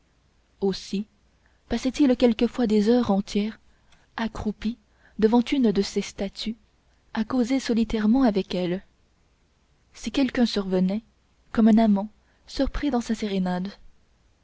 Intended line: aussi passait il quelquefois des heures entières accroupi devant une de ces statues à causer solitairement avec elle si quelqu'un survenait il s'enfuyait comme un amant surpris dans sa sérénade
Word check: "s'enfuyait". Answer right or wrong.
wrong